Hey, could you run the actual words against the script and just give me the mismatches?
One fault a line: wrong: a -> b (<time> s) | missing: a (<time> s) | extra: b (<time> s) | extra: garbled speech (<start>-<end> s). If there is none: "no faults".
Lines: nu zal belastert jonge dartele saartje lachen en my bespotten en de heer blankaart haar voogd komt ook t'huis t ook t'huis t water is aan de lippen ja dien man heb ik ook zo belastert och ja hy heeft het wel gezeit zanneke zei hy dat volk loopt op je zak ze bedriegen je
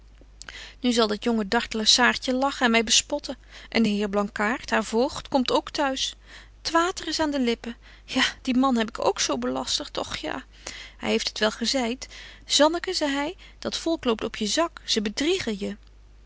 wrong: belastert -> dat (1.1 s)
missing: ook t'huis t (6.7 s)